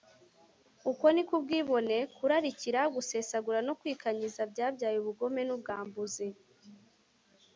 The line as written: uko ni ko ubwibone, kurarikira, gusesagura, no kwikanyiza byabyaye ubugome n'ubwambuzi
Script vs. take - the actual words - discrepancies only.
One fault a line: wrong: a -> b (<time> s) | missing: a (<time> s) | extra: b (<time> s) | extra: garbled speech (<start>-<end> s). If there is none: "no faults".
no faults